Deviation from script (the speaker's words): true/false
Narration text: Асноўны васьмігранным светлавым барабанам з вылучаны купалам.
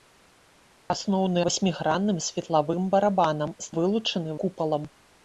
false